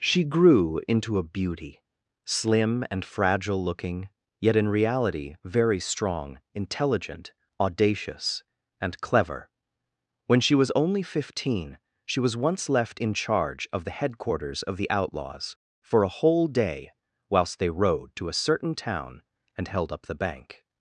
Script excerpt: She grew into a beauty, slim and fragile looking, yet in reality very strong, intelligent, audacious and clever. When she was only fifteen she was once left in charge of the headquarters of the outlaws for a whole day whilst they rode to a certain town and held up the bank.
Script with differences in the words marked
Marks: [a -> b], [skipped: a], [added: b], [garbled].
She grew into a beauty, slim and fragile looking, yet in reality very strong, intelligent, audacious and clever. When she was only fifteen she was once left in charge of the headquarters of the outlaws for a whole day whilst they rode to a certain town and held up the bank.